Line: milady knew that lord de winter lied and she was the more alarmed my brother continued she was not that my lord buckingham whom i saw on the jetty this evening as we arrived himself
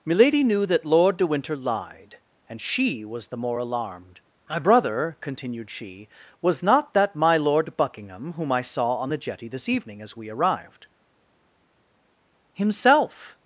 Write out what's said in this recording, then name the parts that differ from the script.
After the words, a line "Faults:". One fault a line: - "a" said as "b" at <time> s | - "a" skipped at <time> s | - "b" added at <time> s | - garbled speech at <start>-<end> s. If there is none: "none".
milady knew that lord de winter lied and she was the more alarmed my brother continued she was not that my lord buckingham whom i saw on the jetty this evening as we arrived himself
Faults:
none